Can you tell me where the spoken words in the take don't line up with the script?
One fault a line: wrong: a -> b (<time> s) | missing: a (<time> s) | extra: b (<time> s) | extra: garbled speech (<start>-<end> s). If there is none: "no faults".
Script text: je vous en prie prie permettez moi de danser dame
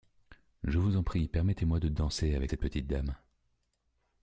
missing: prie (1.3 s)
extra: avec cette petite (2.3 s)